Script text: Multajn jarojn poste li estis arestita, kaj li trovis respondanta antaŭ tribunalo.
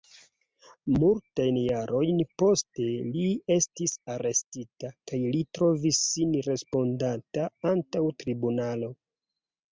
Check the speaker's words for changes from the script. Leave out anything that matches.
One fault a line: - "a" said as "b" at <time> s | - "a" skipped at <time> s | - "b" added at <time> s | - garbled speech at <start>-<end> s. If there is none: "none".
- "sin" added at 6.1 s